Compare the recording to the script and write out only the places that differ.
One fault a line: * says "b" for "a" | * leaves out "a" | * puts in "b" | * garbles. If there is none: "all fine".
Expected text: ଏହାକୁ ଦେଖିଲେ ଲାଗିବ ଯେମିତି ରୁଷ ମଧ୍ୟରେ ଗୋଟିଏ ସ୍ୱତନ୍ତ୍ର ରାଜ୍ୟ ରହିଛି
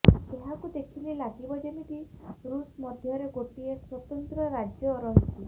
all fine